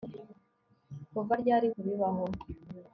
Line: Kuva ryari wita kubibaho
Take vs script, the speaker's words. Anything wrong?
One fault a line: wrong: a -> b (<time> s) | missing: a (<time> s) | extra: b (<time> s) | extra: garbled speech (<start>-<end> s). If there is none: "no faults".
missing: wita (1.7 s)